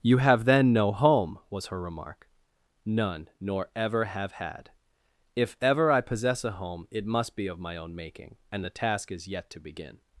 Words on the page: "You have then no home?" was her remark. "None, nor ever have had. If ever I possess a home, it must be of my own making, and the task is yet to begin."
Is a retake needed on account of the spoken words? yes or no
no